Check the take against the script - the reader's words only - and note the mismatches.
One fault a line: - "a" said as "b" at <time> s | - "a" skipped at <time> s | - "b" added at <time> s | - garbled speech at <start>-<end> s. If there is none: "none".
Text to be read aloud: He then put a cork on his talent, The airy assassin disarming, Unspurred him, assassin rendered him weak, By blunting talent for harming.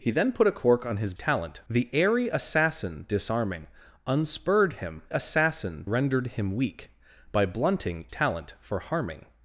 none